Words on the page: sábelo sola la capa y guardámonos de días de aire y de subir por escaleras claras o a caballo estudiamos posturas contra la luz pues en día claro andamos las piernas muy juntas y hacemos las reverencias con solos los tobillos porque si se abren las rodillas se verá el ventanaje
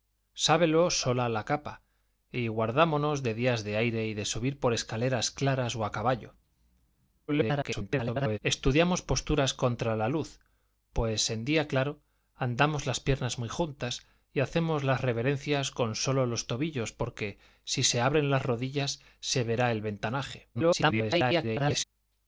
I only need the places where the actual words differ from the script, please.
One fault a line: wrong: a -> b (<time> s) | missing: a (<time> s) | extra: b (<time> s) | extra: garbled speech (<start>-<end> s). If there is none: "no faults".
extra: garbled speech (7.3-8.4 s)
extra: garbled speech (20.5-21.8 s)